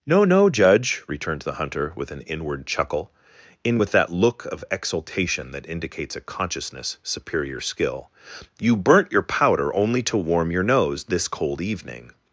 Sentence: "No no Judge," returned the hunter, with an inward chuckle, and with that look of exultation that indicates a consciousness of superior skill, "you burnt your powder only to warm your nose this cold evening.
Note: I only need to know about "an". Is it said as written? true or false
true